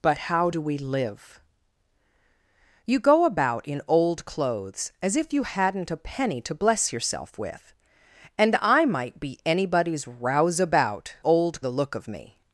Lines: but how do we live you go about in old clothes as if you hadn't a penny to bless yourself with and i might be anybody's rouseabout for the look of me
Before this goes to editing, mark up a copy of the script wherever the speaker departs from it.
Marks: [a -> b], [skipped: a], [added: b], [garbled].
but how do we live you go about in old clothes as if you hadn't a penny to bless yourself with and i might be anybody's rouseabout [for -> old] the look of me